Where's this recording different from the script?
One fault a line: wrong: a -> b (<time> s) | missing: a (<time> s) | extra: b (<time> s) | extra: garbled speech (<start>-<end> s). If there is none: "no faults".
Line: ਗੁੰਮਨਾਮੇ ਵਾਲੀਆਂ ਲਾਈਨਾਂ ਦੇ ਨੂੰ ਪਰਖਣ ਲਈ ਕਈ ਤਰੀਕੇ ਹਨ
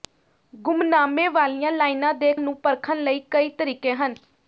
no faults